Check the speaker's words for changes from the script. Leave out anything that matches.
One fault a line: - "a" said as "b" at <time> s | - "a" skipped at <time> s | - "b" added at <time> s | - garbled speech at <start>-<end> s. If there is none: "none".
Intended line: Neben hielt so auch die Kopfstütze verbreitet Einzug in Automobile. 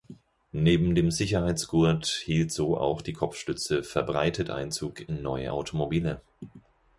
- "dem Sicherheitsgurt" added at 0.9 s
- "neue" added at 5.2 s